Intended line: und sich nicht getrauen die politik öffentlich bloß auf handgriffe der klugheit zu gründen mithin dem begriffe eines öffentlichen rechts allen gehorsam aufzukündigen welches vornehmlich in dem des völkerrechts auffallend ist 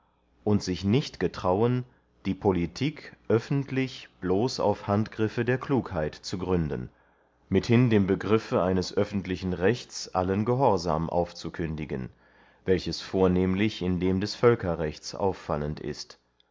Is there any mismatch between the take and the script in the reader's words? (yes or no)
no